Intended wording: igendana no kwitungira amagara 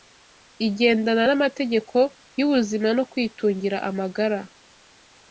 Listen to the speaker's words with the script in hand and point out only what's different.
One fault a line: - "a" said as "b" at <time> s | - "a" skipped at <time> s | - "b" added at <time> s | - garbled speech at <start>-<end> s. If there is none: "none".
- "n'amategeko y'ubuzima" added at 1.3 s